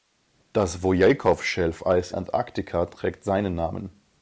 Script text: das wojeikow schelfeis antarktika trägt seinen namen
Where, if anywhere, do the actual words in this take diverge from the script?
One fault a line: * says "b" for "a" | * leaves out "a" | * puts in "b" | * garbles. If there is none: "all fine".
all fine